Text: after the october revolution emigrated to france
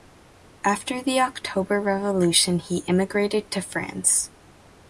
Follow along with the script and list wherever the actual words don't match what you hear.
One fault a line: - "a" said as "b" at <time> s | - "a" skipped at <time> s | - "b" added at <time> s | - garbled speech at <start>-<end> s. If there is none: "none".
- "he" added at 2.6 s